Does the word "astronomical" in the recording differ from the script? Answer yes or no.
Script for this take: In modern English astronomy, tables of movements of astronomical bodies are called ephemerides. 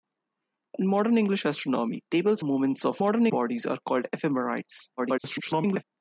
yes